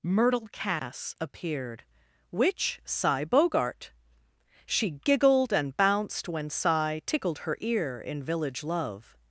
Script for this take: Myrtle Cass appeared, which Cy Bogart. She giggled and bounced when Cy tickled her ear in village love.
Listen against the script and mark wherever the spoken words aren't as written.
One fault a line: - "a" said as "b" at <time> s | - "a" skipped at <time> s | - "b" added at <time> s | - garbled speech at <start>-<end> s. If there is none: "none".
none